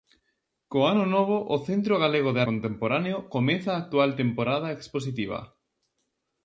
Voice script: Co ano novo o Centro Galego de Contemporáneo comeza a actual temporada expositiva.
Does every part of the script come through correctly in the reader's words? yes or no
yes